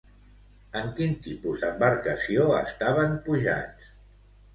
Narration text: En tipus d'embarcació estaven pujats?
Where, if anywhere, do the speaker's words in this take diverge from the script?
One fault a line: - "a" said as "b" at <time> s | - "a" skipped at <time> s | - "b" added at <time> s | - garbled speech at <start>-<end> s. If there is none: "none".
- "quin" added at 1.0 s